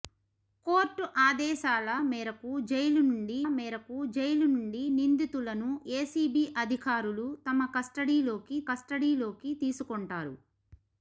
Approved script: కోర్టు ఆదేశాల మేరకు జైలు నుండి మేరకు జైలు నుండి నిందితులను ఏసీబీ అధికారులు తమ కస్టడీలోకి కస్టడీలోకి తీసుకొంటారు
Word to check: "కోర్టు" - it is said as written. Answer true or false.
true